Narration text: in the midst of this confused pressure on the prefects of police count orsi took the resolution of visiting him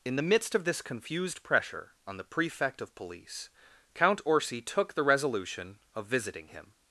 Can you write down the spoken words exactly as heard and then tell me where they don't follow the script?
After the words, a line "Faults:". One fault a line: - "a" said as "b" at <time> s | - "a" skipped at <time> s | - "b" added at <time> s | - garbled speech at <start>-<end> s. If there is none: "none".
in the midst of this confused pressure on the prefect of police count orsi took the resolution of visiting him
Faults:
- "prefects" said as "prefect" at 2.2 s